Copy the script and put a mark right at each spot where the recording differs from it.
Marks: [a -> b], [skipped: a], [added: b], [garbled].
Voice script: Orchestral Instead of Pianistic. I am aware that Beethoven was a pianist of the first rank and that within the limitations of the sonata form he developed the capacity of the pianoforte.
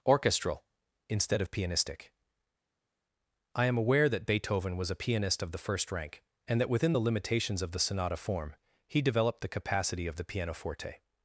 Orchestral Instead of Pianistic. I am aware that Beethoven was a pianist of the first rank and that within the limitations of the sonata form he developed the capacity of the pianoforte.